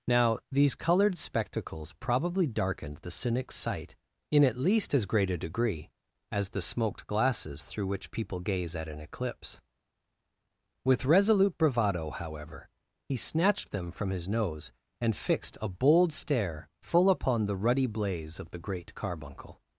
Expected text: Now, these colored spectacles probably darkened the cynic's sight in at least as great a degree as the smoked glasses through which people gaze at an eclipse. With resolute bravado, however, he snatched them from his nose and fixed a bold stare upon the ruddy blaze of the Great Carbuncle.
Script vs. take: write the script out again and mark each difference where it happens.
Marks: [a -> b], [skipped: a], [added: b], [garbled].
Now, these colored spectacles probably darkened the cynic's sight in at least as great a degree as the smoked glasses through which people gaze at an eclipse. With resolute bravado, however, he snatched them from his nose and fixed a bold stare [added: full] upon the ruddy blaze of the Great Carbuncle.